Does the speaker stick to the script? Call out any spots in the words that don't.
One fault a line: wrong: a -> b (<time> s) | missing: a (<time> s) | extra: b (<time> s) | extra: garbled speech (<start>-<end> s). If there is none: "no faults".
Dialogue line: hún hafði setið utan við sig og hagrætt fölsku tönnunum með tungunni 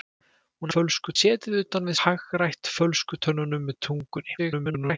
wrong: hafði -> fölsku (0.7 s)
missing: sig og (2.0 s)
extra: garbled speech (4.4-5.0 s)